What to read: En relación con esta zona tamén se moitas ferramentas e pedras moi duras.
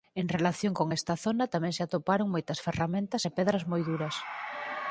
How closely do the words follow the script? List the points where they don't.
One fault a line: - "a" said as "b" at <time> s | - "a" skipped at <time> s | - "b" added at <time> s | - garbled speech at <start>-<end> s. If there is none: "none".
- "atoparon" added at 1.8 s